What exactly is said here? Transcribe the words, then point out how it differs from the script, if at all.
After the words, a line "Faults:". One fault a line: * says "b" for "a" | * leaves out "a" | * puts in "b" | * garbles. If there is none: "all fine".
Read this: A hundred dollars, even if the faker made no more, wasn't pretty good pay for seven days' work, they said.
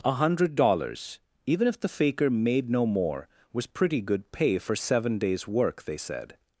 A hundred dollars, even if the faker made no more, was pretty good pay for seven days' work, they said.
Faults:
* says "was" for "wasn't"